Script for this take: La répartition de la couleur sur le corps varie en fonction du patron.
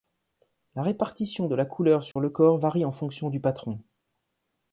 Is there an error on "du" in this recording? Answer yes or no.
no